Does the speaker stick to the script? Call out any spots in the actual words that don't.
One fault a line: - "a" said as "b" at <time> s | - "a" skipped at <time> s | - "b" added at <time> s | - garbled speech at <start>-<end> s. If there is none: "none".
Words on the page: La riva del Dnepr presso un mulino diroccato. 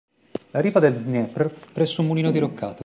none